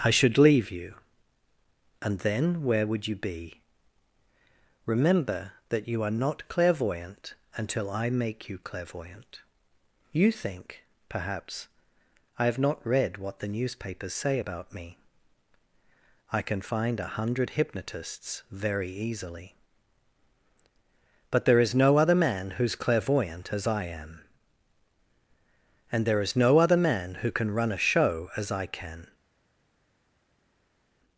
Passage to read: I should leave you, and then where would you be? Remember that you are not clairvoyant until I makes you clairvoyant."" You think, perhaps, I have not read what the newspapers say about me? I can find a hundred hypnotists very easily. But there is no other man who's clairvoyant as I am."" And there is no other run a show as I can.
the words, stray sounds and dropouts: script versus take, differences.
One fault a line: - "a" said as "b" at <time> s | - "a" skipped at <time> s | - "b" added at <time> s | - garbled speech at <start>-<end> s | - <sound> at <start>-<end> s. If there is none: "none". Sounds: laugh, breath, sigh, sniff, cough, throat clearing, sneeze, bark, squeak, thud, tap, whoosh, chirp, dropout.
- "makes" said as "make" at 8.1 s
- "man who can" added at 26.8 s